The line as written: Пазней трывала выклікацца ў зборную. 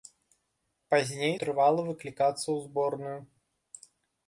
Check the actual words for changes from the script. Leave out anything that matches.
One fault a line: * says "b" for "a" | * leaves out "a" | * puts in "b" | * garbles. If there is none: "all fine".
all fine